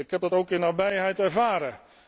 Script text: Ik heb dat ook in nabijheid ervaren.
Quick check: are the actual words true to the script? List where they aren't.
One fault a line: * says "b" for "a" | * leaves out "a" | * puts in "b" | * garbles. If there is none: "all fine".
all fine